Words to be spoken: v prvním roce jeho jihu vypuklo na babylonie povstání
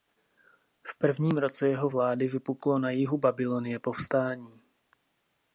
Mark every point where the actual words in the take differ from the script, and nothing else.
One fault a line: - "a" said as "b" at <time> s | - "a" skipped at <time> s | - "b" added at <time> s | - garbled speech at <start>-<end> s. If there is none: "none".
- "jihu" said as "vlády" at 1.9 s
- "jihu" added at 2.9 s